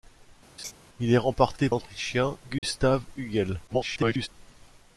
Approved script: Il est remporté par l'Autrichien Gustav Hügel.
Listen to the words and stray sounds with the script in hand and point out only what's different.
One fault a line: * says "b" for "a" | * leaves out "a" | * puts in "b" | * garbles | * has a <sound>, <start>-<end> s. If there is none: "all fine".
* has a laugh, 0.6-0.7 s
* leaves out "par"
* has a dropout, 2.6-2.6 s
* garbles